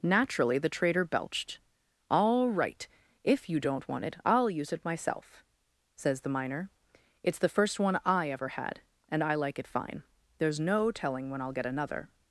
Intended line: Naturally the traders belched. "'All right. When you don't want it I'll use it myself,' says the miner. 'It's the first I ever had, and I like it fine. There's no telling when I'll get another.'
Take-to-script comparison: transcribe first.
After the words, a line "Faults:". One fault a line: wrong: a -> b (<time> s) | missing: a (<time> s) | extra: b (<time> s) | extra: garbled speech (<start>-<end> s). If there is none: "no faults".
Naturally the trader belched. "'All right. If you don't want it I'll use it myself,' says the miner. 'It's the first one I ever had, and I like it fine. There's no telling when I'll get another.'
Faults:
wrong: traders -> trader (0.7 s)
wrong: When -> If (3.2 s)
extra: one (7.8 s)